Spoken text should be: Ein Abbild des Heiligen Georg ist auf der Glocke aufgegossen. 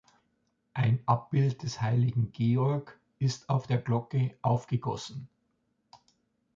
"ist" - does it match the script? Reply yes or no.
yes